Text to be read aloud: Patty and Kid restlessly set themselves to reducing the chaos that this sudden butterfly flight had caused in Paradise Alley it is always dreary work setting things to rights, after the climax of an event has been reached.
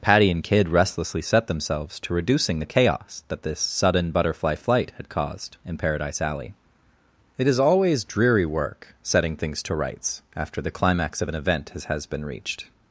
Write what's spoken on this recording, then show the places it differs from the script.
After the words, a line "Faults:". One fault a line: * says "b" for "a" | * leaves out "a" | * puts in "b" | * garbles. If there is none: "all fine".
Patty and Kid restlessly set themselves to reducing the chaos that this sudden butterfly flight had caused in Paradise Alley it is always dreary work setting things to rights, after the climax of an event has has been reached.
Faults:
* puts in "has"